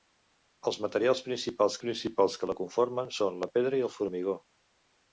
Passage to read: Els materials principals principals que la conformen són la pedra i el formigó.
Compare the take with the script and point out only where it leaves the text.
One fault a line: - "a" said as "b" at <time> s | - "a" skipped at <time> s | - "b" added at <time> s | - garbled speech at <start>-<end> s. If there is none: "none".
none